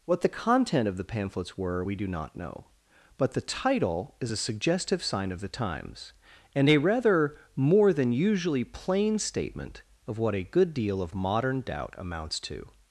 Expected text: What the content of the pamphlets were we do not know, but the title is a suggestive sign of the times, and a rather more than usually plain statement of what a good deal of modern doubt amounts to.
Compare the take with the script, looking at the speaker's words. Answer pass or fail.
pass